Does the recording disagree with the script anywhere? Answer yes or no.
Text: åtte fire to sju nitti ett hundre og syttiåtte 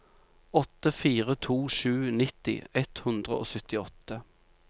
no